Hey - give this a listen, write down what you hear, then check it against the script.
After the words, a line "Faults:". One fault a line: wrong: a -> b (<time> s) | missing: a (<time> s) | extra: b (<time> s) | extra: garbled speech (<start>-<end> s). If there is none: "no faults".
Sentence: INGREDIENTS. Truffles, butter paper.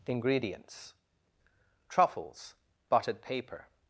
INGREDIENTS. Truffles, buttered paper.
Faults:
wrong: butter -> buttered (2.9 s)